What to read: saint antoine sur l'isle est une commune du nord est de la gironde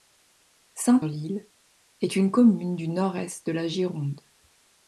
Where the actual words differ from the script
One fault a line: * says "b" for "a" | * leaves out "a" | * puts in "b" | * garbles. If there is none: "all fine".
* leaves out "antoine sur"